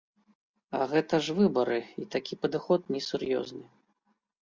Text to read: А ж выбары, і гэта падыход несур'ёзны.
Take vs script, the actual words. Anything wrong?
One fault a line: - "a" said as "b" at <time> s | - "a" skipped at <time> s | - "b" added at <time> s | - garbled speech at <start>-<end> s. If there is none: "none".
- "гэта" added at 0.9 s
- "гэта" said as "такі" at 2.2 s